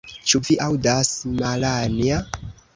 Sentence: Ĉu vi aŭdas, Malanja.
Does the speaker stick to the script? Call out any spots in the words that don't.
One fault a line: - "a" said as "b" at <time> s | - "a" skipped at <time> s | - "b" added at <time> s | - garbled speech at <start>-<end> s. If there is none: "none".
none